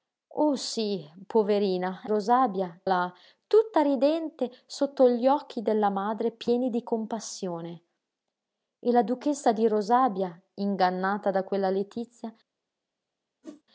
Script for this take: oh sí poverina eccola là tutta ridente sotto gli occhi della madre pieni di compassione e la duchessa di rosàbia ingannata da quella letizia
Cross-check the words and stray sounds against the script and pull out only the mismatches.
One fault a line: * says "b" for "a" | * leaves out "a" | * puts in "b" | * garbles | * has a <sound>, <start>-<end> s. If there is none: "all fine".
* says "rosàbia" for "eccola"
* has a whoosh, 13.4-13.6 s